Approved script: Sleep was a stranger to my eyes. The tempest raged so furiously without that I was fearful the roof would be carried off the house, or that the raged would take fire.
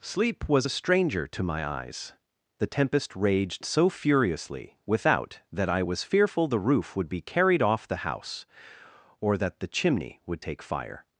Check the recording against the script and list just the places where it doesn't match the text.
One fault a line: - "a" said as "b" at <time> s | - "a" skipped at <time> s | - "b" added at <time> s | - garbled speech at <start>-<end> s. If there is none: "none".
- "raged" said as "chimney" at 9.7 s